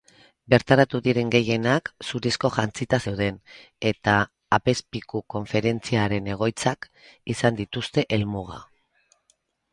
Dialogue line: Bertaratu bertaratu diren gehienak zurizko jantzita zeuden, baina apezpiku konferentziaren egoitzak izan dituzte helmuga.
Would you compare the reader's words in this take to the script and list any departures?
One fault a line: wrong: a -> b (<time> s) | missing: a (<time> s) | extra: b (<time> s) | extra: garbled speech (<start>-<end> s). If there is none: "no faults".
missing: bertaratu (1.0 s)
wrong: baina -> eta (3.9 s)